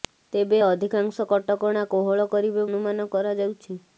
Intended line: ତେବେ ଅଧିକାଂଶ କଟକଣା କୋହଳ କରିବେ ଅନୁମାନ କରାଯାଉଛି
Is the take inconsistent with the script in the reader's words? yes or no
no